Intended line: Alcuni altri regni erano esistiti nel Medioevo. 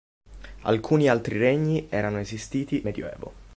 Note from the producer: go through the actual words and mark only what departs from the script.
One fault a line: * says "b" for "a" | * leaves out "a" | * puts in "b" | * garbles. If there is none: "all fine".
* leaves out "nel"